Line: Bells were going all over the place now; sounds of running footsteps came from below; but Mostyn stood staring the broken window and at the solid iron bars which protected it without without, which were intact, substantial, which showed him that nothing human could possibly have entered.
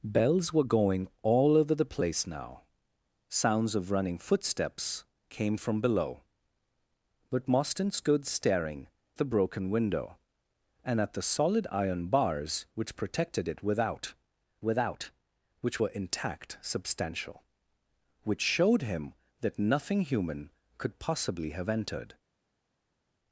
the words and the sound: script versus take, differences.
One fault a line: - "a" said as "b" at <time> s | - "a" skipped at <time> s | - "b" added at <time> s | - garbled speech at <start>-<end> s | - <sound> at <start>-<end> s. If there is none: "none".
none